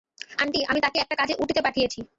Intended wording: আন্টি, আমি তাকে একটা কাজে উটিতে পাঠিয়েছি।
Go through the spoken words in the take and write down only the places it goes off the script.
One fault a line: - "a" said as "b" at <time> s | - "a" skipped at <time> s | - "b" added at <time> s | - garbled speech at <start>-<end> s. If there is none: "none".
none